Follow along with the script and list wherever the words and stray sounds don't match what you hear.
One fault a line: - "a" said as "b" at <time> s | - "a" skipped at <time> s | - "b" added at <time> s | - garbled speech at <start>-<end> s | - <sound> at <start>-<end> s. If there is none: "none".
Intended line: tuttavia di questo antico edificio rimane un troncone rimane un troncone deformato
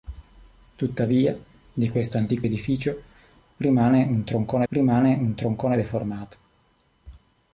none